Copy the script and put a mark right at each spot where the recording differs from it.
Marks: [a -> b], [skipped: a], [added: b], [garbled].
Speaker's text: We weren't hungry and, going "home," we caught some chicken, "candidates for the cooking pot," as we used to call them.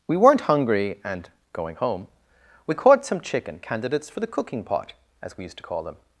We weren't hungry and, going "home," we caught some chicken, "candidates for the cooking pot," as we used to call them.